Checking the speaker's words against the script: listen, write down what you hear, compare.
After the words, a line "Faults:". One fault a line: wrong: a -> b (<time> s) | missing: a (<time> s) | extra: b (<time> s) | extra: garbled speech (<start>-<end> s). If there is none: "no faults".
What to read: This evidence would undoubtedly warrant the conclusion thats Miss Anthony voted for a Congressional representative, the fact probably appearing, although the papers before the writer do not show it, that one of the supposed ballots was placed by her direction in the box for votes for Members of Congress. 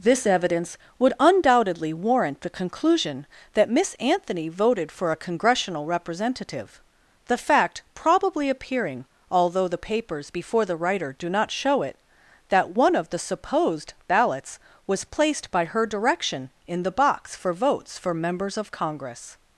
This evidence would undoubtedly warrant the conclusion that Miss Anthony voted for a Congressional representative, the fact probably appearing, although the papers before the writer do not show it, that one of the supposed ballots was placed by her direction in the box for votes for Members of Congress.
Faults:
wrong: thats -> that (3.5 s)